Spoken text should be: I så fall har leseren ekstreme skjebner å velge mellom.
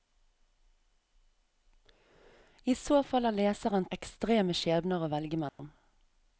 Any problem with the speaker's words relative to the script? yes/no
no